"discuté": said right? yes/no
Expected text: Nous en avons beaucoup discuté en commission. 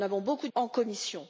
no